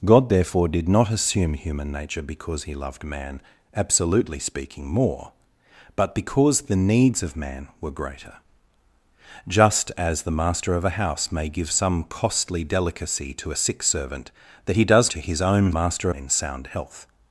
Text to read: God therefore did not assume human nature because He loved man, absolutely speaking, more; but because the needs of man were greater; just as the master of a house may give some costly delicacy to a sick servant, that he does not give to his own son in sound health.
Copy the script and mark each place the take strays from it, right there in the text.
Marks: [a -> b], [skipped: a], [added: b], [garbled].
God therefore did not assume human nature because He loved man, absolutely speaking, more; but because the needs of man were greater; just as the master of a house may give some costly delicacy to a sick servant, that he does [skipped: not give] to his own [son -> master] in sound health.